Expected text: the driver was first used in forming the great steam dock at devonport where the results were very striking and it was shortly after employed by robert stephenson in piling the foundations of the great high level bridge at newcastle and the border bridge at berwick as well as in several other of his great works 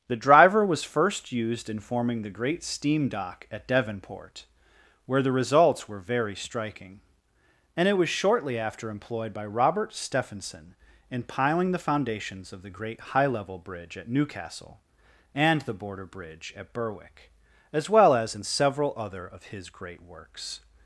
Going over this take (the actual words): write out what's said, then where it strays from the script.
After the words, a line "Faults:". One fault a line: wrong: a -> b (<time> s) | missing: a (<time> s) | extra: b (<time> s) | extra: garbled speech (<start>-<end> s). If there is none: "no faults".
the driver was first used in forming the great steam dock at devonport where the results were very striking and it was shortly after employed by robert stephenson in piling the foundations of the great high level bridge at newcastle and the border bridge at berwick as well as in several other of his great works
Faults:
no faults